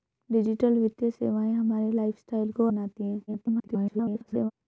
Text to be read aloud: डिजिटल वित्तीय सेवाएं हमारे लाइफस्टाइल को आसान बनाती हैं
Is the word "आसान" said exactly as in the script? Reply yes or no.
no